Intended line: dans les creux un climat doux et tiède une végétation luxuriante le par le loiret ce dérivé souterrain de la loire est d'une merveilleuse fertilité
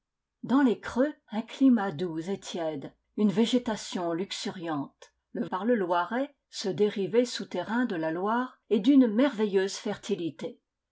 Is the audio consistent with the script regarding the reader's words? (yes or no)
yes